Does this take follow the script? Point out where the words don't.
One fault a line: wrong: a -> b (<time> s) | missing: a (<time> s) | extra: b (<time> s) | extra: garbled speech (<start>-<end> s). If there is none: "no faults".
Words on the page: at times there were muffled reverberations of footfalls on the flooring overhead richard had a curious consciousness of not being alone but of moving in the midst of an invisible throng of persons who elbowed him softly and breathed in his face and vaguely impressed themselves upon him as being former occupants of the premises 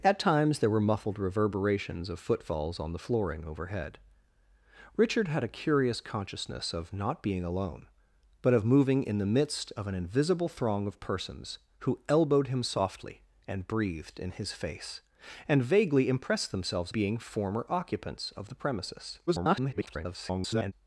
missing: upon him as (16.9 s)
extra: garbled speech (19.3-20.7 s)